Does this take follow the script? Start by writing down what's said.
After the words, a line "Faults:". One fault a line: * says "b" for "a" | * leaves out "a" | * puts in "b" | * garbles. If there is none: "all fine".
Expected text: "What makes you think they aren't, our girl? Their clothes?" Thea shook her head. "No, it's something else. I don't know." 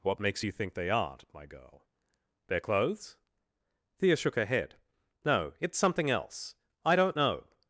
"What makes you think they aren't, my girl? Their clothes?" Thea shook her head. "No, it's something else. I don't know."
Faults:
* says "my" for "our"